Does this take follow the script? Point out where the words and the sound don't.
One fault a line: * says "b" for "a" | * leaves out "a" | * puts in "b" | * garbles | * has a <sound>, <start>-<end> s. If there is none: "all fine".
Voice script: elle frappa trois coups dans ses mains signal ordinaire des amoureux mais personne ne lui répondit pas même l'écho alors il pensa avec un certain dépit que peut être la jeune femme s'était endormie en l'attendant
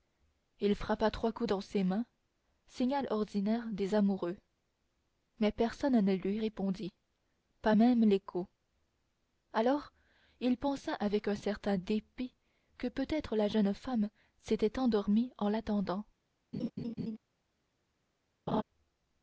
* says "il" for "elle"
* has a laugh, 16.5-17.2 s
* has a laugh, 18.5-18.6 s